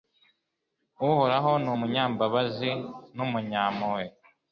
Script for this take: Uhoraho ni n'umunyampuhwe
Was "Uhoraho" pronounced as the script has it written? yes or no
yes